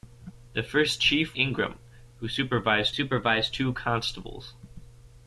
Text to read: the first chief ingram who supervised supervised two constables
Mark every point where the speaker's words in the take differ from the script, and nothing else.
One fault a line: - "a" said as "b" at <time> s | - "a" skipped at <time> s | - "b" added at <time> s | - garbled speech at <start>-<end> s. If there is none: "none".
none